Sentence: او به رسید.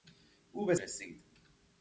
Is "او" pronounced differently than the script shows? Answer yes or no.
no